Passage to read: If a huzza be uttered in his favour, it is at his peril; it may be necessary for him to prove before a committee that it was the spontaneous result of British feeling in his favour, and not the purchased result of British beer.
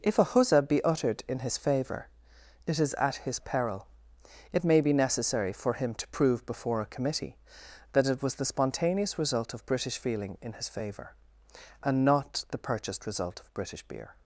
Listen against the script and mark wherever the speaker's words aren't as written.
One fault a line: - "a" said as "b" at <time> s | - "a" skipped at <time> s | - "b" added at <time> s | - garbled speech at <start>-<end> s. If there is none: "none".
none